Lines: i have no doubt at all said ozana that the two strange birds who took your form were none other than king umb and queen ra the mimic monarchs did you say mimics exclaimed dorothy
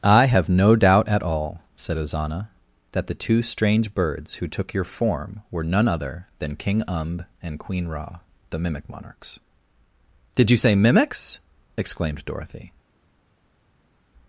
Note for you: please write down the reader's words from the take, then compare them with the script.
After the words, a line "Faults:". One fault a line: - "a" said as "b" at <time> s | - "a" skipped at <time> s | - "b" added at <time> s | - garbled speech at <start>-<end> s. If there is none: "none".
i have no doubt at all said ozana that the two strange birds who took your form were none other than king umb and queen ra the mimic monarchs did you say mimics exclaimed dorothy
Faults:
none